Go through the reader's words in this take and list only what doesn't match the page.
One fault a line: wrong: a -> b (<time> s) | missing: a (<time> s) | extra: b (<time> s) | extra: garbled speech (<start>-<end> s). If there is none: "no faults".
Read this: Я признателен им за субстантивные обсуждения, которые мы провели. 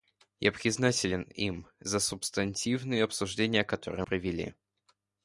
missing: мы (4.0 s)